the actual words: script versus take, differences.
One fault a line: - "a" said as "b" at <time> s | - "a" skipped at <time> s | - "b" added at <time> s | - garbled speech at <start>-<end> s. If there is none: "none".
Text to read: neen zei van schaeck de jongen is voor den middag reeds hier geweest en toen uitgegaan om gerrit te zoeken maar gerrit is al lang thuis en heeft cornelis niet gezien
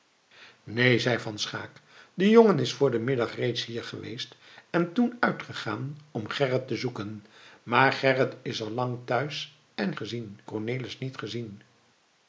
- "heeft" said as "gezien" at 10.0 s